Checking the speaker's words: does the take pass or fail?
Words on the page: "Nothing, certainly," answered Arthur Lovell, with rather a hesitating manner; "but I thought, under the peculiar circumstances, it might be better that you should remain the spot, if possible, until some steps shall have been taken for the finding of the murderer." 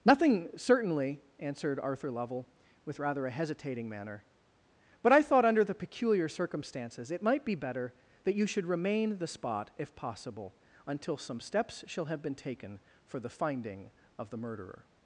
pass